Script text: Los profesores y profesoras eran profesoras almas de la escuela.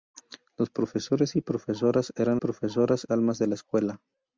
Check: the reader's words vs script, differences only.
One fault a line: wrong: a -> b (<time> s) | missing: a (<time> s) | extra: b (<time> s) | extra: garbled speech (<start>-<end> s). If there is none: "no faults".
no faults